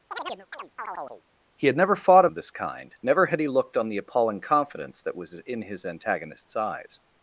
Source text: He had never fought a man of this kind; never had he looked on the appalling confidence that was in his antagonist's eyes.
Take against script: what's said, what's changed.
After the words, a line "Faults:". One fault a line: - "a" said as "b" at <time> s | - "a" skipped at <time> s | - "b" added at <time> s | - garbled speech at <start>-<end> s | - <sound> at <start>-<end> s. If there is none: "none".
He had never fought a of this kind; never had he looked on the appalling confidence that was in his antagonist's eyes.
Faults:
- chirp at 0.1-1.2 s
- "man" skipped at 2.3 s